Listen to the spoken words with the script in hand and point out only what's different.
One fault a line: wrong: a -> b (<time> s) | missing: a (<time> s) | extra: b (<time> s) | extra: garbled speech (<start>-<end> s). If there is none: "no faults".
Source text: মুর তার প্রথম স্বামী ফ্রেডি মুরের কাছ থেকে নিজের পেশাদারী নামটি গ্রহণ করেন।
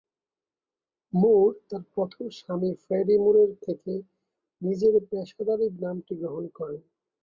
missing: কাছ (3.5 s)